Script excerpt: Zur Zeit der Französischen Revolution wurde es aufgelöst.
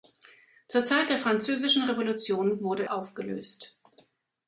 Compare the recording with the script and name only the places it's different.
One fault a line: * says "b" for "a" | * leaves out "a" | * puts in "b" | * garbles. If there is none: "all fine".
* leaves out "es"